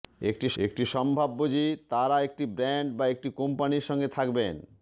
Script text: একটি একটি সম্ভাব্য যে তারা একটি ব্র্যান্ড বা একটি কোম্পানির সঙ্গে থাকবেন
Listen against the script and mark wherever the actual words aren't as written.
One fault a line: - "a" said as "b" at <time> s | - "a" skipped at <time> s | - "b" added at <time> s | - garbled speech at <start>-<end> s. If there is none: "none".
none